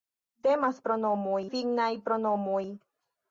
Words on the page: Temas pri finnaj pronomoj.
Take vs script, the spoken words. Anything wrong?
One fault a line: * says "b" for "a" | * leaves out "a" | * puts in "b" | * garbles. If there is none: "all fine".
* says "pronomoj" for "pri"